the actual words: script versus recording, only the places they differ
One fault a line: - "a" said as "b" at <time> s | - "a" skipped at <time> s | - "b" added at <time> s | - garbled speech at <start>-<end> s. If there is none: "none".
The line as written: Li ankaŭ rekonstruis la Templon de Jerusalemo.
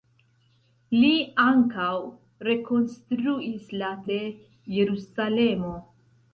- "Templon" skipped at 3.9 s